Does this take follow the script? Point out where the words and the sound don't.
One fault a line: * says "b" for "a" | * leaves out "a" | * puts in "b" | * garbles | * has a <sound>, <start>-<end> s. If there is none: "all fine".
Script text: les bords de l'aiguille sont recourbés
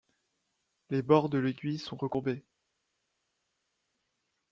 all fine